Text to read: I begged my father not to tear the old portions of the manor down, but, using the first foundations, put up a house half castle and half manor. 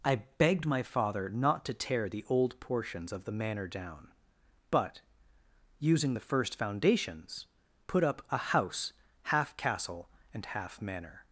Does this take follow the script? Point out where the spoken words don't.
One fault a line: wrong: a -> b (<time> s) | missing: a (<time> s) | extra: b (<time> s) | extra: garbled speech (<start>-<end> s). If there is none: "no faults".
no faults